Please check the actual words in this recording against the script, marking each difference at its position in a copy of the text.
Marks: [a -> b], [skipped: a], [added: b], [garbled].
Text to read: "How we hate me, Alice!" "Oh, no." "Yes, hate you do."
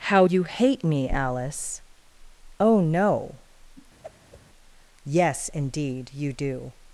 "How [we -> you] hate me, Alice!" "Oh, no." "Yes, [hate -> indeed] you do."